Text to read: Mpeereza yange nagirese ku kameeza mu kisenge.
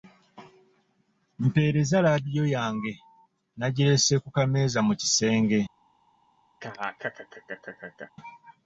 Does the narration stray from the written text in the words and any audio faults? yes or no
yes